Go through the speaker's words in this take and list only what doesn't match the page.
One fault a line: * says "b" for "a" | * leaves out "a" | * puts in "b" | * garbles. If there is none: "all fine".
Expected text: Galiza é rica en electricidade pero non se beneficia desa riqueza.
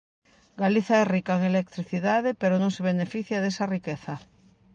all fine